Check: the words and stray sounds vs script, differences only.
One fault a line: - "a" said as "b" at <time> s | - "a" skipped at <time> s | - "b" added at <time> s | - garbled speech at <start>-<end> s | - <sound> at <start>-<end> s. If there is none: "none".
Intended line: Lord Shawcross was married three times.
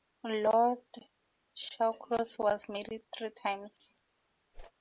- whoosh at 4.5-4.7 s